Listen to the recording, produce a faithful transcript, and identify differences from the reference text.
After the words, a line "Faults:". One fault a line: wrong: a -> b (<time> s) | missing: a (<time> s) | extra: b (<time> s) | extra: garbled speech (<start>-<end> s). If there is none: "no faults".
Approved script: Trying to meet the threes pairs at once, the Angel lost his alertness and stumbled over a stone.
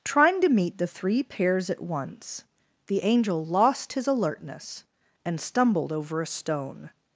Trying to meet the three pairs at once, the Angel lost his alertness and stumbled over a stone.
Faults:
wrong: threes -> three (0.9 s)